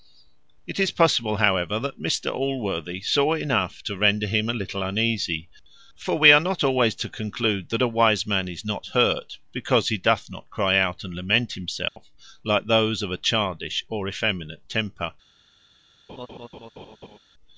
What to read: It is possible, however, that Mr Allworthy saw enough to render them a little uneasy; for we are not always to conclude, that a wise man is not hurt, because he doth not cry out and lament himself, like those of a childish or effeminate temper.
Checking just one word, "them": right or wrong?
wrong